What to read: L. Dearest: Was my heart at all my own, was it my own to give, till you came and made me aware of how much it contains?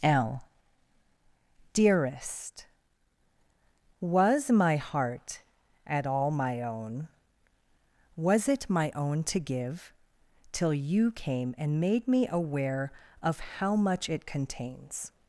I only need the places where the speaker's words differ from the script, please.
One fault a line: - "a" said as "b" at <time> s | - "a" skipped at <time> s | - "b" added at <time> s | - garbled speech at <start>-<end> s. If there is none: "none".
none